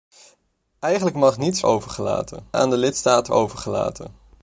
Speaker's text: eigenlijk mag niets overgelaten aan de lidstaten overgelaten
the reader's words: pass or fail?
pass